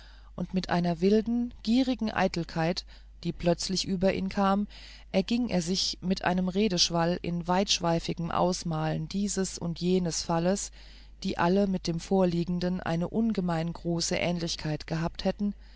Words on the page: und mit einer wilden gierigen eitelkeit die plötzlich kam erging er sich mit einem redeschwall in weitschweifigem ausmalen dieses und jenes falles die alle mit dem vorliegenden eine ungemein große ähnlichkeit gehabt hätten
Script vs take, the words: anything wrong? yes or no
yes